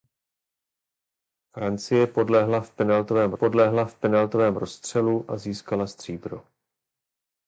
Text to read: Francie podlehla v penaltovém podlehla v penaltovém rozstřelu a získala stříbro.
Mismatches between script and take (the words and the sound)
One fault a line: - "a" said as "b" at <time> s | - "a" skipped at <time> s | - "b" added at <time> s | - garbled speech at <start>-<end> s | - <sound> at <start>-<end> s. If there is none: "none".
none